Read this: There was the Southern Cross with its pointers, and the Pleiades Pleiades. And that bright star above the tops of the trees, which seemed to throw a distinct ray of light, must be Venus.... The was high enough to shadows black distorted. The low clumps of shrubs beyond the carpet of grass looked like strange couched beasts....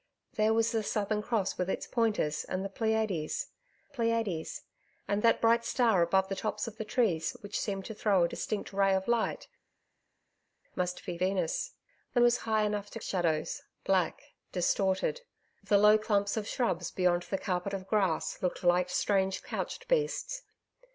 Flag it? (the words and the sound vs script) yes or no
no